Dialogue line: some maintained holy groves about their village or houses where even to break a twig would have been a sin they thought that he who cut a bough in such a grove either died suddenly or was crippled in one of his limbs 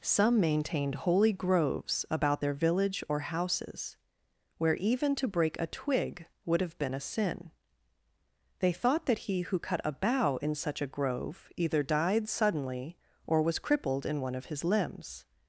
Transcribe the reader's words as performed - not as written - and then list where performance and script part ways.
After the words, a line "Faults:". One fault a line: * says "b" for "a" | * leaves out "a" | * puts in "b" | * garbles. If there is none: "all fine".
some maintained holy groves about their village or houses where even to break a twig would have been a sin they thought that he who cut a bough in such a grove either died suddenly or was crippled in one of his limbs
Faults:
all fine